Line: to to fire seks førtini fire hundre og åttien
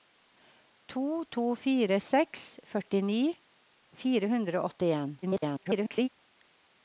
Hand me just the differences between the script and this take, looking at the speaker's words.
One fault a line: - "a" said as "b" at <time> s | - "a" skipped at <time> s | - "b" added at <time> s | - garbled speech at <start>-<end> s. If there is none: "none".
- garbled speech at 5.2-6.1 s